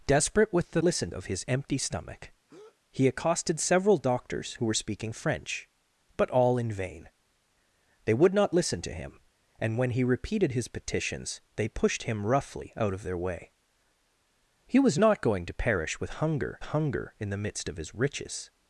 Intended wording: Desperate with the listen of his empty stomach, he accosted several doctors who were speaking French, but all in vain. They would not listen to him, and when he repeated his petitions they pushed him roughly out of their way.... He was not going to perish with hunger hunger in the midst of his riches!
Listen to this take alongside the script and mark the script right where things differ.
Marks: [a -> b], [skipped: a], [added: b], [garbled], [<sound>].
Desperate with the listen of his empty stomach, [breath] he accosted several doctors who were speaking French, but all in vain. They would not listen to him, and when he repeated his petitions they pushed him roughly out of their way.... He was not going to perish with hunger hunger in the midst of his riches!